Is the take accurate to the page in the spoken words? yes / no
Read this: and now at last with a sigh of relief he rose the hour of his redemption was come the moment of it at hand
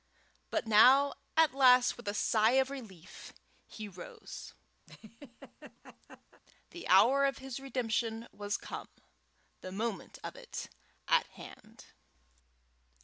no